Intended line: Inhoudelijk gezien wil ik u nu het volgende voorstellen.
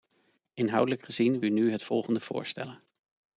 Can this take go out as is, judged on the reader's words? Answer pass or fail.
fail